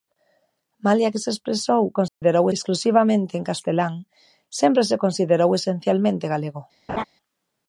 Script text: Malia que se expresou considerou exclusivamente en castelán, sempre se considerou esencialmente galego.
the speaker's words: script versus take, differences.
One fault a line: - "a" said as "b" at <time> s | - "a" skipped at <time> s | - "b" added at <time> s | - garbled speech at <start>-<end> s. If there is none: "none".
none